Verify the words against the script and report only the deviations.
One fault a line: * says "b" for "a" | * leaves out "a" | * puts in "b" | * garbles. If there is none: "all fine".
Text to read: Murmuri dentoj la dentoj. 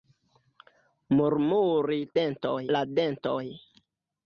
all fine